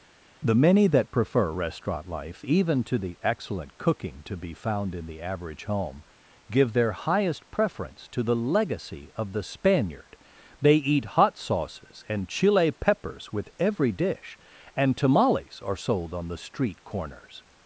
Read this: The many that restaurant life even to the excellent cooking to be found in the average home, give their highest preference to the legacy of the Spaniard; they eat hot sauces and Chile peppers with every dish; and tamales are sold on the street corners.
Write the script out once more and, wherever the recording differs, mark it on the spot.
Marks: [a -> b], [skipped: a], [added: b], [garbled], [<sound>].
The many that [added: prefer] restaurant life even to the excellent cooking to be found in the average home, give their highest preference to the legacy of the Spaniard; they eat hot sauces and Chile peppers with every dish; and tamales are sold on the street corners.